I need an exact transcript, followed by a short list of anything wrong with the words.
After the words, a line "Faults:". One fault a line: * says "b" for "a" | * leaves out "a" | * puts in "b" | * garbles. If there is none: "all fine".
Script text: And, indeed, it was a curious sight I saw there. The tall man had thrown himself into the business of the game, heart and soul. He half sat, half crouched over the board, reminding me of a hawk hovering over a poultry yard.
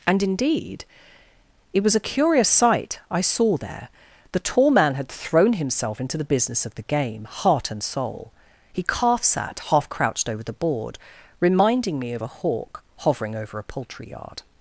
And, indeed, it was a curious sight I saw there. The tall man had thrown himself into the business of the game, heart and soul. He calf sat, half crouched over the board, reminding me of a hawk hovering over a poultry yard.
Faults:
* says "calf" for "half"